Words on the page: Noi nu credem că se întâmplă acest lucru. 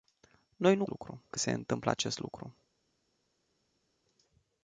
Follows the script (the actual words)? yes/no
no